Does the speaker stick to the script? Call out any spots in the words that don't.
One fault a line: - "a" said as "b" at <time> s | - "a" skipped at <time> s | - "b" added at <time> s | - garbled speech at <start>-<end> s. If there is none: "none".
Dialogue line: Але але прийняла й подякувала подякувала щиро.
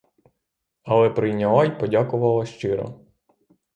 - "але" skipped at 1.1 s
- "подякувала" skipped at 2.5 s